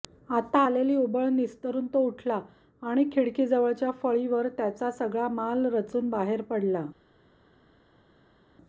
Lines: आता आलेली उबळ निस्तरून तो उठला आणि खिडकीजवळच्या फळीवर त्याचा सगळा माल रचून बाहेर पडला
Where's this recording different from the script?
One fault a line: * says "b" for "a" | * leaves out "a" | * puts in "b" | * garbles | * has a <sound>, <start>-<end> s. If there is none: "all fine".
all fine